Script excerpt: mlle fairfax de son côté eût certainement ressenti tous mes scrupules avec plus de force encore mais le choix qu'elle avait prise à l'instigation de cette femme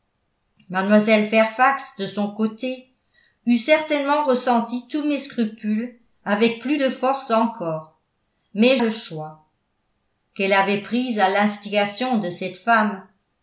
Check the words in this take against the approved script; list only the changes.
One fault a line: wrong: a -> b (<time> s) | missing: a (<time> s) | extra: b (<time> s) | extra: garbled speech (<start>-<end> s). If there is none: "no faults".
no faults